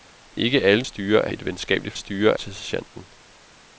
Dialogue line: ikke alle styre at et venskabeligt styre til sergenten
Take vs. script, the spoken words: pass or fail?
pass